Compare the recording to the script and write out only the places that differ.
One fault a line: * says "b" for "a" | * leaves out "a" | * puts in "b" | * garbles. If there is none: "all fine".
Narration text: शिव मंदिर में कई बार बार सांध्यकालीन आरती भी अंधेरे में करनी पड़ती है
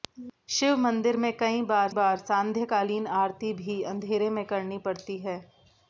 all fine